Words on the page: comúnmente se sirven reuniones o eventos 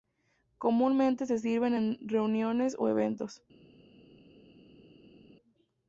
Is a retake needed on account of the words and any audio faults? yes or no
yes